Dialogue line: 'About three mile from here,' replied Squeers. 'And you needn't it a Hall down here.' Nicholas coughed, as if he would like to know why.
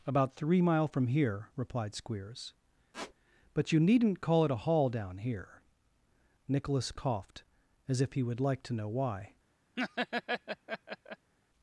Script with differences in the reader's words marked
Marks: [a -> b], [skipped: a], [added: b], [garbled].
'About three mile from here,' replied Squeers. ['And -> But] you needn't [added: call] it a Hall down here.' Nicholas coughed, as if he would like to know why.